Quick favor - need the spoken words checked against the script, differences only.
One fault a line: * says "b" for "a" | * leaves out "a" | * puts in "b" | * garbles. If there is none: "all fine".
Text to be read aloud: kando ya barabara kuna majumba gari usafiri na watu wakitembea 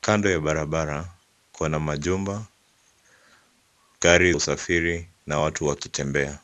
all fine